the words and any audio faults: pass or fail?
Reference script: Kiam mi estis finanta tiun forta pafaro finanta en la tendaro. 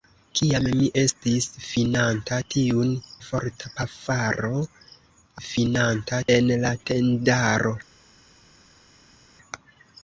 pass